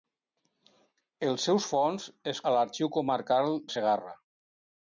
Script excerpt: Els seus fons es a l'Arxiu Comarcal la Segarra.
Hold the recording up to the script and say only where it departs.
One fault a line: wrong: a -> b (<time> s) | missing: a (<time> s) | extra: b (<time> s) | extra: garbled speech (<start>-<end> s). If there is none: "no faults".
no faults